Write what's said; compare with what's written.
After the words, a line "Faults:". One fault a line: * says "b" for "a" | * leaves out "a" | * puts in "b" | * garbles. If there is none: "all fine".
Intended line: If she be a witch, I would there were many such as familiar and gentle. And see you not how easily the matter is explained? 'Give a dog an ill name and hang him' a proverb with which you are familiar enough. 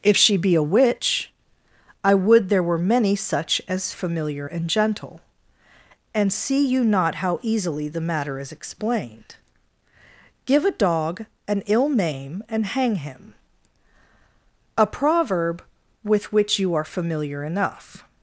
If she be a witch, I would there were many such as familiar and gentle. And see you not how easily the matter is explained? 'Give a dog an ill name and hang him' a proverb with which you are familiar enough.
Faults:
all fine